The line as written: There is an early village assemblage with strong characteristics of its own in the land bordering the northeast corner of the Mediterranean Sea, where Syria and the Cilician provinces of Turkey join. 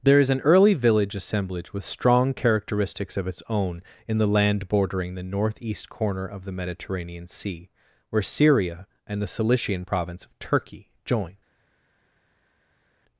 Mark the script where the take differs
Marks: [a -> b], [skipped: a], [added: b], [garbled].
There is an early village assemblage with strong characteristics of its own in the land bordering the northeast corner of the Mediterranean Sea, where Syria and the Cilician [provinces -> province] of Turkey join.